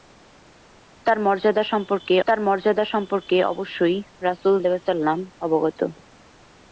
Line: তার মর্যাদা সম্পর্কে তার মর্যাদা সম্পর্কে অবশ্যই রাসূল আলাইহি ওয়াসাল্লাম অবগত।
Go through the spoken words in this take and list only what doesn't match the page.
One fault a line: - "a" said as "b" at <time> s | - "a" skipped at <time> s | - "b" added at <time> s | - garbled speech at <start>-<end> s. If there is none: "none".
none